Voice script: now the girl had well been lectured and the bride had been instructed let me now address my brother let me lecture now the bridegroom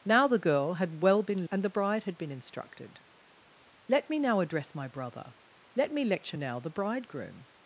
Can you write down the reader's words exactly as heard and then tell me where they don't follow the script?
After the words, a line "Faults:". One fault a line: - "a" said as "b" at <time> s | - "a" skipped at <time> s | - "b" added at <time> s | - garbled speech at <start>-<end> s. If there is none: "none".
now the girl had well been and the bride had been instructed let me now address my brother let me lecture now the bridegroom
Faults:
- "lectured" skipped at 1.4 s